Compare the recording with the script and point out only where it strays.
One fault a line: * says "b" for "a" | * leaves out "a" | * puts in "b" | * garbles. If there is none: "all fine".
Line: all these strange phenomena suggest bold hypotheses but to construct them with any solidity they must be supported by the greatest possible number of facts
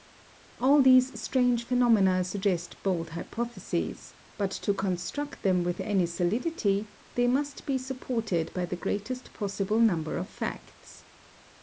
all fine